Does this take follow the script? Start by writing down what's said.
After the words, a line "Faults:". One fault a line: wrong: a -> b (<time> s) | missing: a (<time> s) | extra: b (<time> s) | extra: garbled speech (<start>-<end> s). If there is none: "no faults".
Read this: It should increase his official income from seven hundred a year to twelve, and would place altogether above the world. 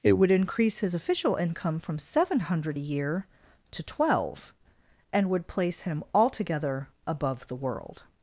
It would increase his official income from seven hundred a year to twelve, and would place him altogether above the world.
Faults:
wrong: should -> would (0.1 s)
extra: him (5.8 s)